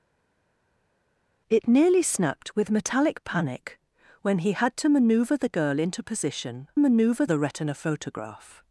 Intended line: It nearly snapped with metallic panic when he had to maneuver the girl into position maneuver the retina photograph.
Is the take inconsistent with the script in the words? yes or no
no